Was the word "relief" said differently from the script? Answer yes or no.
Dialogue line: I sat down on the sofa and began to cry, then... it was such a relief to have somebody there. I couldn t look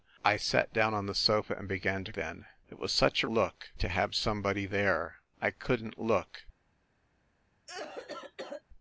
yes